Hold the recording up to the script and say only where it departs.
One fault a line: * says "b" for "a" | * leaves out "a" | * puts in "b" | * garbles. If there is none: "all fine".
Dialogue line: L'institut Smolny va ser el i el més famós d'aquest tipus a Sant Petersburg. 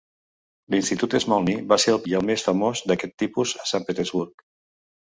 all fine